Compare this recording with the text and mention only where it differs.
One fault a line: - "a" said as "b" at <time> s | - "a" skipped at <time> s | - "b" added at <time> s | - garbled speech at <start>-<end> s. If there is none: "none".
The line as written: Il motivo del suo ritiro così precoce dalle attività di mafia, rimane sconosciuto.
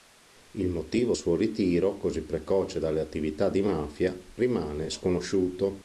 - "del" skipped at 1.1 s